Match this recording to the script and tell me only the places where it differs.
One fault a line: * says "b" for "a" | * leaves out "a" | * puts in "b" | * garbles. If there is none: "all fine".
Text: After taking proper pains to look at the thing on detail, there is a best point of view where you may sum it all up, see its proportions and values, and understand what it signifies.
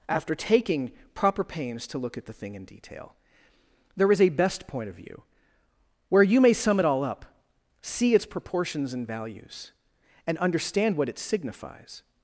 * says "in" for "on"